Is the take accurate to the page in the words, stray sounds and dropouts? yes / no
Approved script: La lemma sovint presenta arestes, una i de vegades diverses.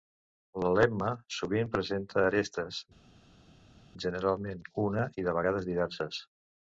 no